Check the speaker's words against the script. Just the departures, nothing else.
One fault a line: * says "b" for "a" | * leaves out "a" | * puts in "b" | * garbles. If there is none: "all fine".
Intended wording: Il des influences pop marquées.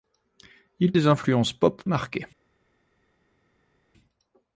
all fine